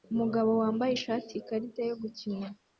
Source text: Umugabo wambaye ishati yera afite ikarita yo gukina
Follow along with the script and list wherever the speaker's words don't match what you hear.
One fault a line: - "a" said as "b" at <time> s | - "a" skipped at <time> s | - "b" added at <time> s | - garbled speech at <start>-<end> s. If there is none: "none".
- "yera afite" skipped at 1.3 s